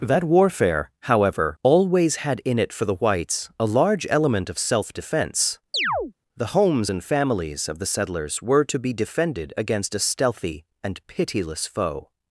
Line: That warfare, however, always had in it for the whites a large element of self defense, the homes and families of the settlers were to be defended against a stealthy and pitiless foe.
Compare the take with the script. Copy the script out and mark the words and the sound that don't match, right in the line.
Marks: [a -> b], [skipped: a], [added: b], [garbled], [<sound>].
That warfare, however, always had in it for the whites a large element of self defense, [chirp] the homes and families of the settlers were to be defended against a stealthy and pitiless foe.